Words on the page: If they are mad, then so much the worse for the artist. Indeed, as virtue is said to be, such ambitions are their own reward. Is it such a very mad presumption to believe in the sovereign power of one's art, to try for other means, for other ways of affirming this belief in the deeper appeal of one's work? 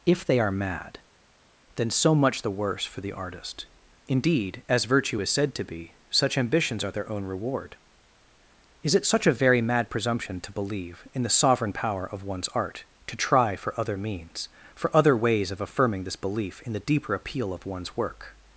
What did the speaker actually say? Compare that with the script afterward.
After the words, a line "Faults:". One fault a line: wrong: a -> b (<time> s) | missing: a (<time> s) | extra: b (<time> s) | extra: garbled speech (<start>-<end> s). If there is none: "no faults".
If they are mad, then so much the worse for the artist. Indeed, as virtue is said to be, such ambitions are their own reward. Is it such a very mad presumption to believe in the sovereign power of one's art, to try for other means, for other ways of affirming this belief in the deeper appeal of one's work?
Faults:
no faults